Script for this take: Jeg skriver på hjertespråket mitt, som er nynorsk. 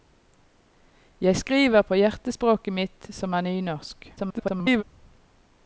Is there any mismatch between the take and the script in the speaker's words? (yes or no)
yes